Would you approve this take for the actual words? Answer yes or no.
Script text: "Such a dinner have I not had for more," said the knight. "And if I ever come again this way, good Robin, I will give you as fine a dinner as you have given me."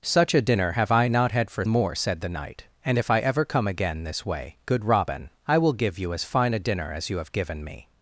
yes